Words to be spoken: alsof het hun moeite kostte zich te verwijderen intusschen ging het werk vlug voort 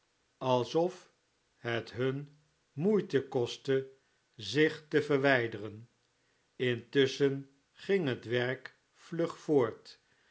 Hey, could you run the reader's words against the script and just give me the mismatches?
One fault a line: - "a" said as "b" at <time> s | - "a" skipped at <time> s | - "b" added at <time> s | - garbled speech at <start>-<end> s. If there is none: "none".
none